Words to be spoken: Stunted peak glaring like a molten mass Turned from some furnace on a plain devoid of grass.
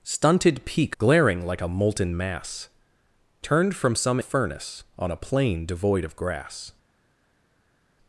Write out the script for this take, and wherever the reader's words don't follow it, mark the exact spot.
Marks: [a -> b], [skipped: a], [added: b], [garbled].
Stunted peak glaring like a molten mass Turned from some furnace on a plain devoid of grass.